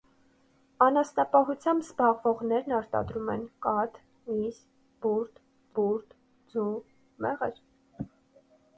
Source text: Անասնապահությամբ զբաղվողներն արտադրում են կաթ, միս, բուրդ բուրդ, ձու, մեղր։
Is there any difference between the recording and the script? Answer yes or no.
no